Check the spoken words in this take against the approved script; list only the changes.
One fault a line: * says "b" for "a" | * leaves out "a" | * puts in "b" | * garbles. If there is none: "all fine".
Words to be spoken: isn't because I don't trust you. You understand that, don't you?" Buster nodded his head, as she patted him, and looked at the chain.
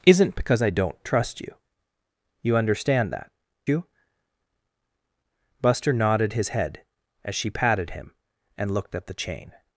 * leaves out "don't"